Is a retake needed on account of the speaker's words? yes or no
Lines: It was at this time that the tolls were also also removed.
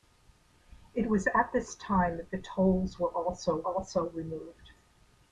no